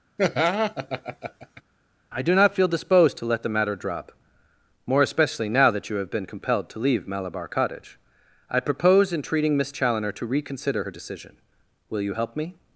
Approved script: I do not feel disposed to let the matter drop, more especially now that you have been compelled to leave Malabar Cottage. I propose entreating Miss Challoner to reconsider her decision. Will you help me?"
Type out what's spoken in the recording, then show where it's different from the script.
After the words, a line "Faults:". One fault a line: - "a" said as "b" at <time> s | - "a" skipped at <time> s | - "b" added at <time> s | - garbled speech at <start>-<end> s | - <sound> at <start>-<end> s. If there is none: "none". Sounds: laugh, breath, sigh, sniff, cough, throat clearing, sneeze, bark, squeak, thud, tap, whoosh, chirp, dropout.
I do not feel disposed to let the matter drop, more especially now that you have been compelled to leave Malabar Cottage. I propose entreating Miss Challoner to reconsider her decision. Will you help me?"
Faults:
- laugh at 0.2-1.6 s